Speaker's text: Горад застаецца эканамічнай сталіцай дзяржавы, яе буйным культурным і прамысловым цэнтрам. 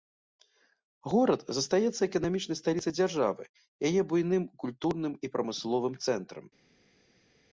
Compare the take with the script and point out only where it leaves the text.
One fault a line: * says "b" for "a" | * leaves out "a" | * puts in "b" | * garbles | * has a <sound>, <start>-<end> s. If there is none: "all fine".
all fine